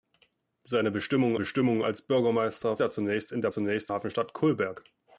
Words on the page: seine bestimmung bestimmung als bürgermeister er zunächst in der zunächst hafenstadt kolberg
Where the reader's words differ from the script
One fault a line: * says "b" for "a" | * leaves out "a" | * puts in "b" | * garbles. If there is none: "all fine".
all fine